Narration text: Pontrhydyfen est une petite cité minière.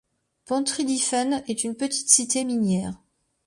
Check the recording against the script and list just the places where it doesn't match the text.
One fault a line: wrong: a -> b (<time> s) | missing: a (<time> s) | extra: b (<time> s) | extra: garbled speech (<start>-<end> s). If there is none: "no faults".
no faults